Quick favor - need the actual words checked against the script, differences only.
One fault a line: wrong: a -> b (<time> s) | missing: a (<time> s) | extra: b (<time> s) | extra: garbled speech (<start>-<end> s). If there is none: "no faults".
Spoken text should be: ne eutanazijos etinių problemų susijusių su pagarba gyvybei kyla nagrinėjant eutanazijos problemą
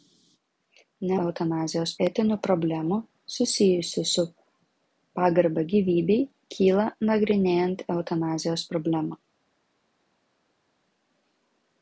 no faults